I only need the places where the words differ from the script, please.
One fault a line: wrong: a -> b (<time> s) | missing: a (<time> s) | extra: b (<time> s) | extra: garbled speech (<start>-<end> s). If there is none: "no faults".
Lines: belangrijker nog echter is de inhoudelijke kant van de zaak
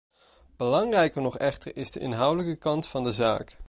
no faults